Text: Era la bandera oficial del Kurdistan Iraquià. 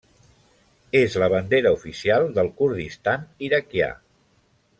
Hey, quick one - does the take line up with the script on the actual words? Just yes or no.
no